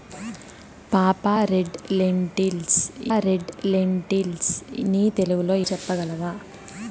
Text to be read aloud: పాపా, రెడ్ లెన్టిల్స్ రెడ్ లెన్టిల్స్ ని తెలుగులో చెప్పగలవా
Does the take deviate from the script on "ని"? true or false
false